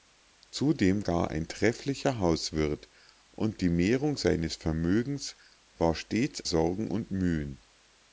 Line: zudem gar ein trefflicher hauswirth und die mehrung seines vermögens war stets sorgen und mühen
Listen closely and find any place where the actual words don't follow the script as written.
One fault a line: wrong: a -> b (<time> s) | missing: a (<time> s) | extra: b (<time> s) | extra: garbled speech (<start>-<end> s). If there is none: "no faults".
no faults